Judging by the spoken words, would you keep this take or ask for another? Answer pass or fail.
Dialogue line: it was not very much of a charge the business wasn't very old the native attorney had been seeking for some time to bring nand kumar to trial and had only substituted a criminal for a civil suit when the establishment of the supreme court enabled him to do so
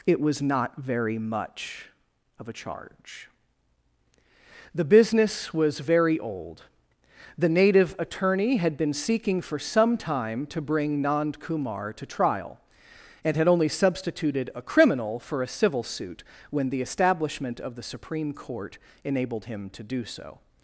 fail